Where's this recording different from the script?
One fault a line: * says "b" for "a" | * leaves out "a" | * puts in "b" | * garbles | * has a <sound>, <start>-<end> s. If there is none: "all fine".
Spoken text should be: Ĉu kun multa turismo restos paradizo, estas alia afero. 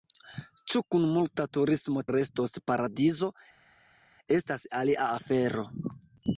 all fine